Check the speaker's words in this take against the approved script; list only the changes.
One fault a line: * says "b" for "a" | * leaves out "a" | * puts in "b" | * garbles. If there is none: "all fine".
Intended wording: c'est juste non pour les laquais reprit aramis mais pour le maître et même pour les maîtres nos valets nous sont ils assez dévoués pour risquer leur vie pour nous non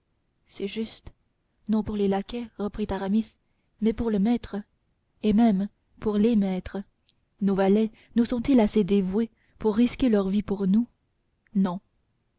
all fine